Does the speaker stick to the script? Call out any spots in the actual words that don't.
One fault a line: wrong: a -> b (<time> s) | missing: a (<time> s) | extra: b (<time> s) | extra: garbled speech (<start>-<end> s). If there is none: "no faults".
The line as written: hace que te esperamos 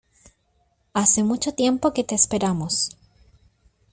extra: mucho tiempo (1.2 s)